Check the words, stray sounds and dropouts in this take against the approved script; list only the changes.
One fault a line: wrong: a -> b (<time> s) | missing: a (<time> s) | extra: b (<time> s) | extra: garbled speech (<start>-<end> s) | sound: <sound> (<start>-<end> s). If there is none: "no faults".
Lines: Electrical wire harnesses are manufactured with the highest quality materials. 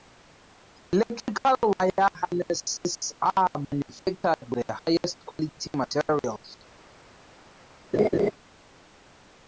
missing: with (4.5 s)
sound: laugh (7.9-8.3 s)